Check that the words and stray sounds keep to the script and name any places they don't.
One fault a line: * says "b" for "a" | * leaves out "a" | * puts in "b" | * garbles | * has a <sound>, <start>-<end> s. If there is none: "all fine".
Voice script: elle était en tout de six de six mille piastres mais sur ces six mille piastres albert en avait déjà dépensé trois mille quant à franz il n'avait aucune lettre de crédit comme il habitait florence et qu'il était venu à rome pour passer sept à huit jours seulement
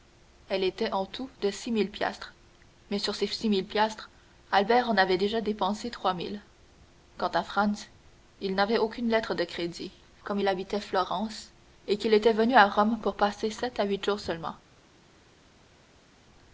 * leaves out "de six"